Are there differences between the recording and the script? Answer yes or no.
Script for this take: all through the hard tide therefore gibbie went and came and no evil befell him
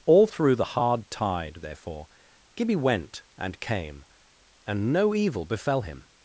no